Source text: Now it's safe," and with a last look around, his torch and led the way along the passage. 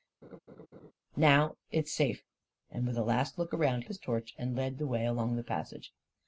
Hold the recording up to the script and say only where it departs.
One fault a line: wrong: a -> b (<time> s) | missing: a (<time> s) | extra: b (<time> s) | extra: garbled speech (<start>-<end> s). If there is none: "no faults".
no faults